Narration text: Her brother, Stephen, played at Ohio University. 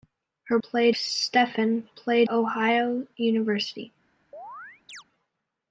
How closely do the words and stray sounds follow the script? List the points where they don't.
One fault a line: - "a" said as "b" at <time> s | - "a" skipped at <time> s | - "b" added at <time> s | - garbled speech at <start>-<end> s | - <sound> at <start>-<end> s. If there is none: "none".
- "brother" said as "played" at 0.6 s
- "at" skipped at 2.3 s
- chirp at 4.3-5.0 s